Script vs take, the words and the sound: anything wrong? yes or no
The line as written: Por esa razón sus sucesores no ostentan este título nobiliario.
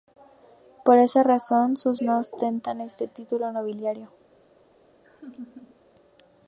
yes